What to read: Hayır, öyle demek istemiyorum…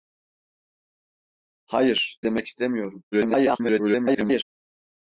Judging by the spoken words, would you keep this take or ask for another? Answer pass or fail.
fail